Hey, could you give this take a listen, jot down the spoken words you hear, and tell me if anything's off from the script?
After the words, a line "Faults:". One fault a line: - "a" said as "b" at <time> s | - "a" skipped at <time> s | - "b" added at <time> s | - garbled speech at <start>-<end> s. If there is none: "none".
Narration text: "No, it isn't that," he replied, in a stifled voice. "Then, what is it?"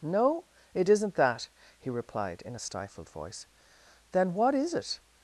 "No, it isn't that," he replied, in a stifled voice. "Then, what is it?"
Faults:
none